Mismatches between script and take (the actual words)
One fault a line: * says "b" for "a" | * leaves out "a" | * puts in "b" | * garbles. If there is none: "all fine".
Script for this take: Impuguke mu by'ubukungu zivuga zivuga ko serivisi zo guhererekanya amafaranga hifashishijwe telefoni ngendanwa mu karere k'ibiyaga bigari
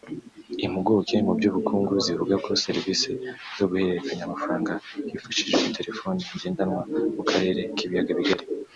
* leaves out "zivuga"